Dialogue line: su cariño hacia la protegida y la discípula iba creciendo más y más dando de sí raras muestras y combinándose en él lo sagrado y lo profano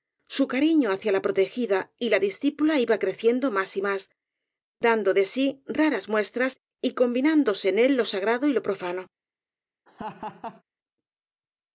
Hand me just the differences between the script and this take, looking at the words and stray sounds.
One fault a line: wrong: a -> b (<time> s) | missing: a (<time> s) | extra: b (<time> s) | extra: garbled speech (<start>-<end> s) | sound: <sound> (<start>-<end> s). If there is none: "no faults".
sound: laugh (9.9-10.6 s)